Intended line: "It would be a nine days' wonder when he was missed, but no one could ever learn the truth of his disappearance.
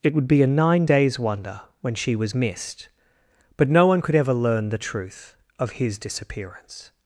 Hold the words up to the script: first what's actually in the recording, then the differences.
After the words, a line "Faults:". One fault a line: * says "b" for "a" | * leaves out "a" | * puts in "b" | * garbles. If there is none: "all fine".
"It would be a nine days' wonder when she was missed, but no one could ever learn the truth of his disappearance.
Faults:
* says "she" for "he"